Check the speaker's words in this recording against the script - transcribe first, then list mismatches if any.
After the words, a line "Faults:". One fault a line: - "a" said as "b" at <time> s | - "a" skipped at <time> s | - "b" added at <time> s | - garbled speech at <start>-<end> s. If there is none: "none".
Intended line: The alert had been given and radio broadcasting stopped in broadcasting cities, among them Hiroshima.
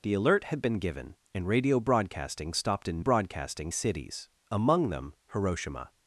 The alert had been given and radio broadcasting stopped in broadcasting cities, among them Hiroshima.
Faults:
none